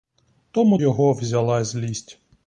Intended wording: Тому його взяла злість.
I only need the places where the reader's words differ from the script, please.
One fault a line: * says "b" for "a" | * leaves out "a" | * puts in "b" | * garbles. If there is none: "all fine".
all fine